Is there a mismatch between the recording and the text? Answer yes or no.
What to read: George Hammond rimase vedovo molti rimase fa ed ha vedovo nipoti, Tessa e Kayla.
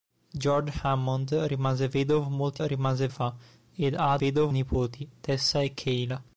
no